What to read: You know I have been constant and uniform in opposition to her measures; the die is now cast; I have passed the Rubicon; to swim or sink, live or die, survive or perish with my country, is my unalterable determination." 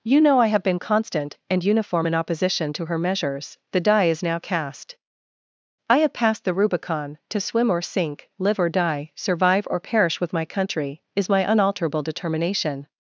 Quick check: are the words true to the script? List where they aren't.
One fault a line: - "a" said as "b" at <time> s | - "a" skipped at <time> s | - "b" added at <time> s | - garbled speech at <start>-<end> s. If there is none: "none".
none